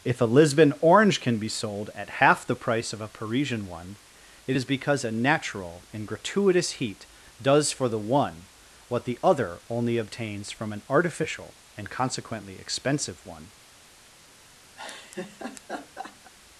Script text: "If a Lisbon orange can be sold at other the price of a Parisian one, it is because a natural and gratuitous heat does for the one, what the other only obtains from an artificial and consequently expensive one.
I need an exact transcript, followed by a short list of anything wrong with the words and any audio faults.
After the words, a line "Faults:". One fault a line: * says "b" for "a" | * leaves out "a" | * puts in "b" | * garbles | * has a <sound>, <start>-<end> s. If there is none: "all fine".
"If a Lisbon orange can be sold at half the price of a Parisian one, it is because a natural and gratuitous heat does for the one, what the other only obtains from an artificial and consequently expensive one.
Faults:
* says "half" for "other"
* has a laugh, 14.8-16.3 s